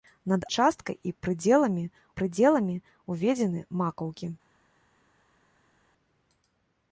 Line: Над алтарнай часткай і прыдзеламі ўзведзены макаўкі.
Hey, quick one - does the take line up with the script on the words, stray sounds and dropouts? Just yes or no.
no